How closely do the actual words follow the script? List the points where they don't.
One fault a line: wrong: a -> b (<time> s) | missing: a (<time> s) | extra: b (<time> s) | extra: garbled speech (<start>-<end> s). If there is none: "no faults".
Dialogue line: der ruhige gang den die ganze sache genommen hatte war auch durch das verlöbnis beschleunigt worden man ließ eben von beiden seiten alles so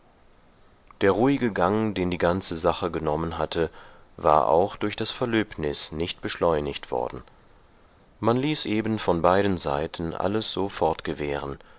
extra: nicht (5.9 s)